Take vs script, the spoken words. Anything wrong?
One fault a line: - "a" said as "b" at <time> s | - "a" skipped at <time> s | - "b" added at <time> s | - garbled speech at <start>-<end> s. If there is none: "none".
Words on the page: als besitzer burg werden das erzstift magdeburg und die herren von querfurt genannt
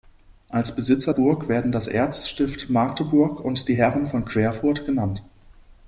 none